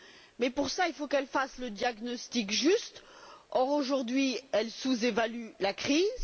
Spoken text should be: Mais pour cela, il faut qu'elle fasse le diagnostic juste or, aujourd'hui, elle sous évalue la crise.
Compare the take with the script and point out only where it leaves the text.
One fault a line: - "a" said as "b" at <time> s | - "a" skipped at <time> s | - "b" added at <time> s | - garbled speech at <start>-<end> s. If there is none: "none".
none